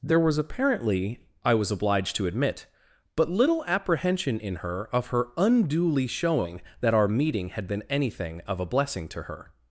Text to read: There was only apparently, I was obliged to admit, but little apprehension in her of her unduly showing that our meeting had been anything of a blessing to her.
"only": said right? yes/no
no